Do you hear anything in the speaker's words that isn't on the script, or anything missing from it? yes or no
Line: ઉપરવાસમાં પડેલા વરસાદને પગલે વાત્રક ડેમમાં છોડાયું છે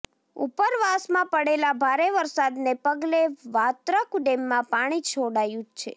yes